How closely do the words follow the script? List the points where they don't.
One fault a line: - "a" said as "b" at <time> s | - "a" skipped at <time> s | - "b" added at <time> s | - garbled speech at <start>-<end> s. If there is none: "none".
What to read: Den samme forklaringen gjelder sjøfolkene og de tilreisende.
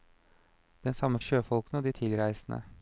- "forklaringen gjelder" skipped at 1.2 s